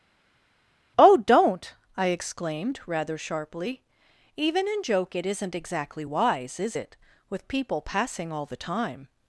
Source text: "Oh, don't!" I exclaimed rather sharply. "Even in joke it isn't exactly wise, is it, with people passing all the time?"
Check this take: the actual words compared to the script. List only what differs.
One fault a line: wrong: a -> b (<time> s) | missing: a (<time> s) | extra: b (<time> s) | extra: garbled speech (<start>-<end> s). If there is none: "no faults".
no faults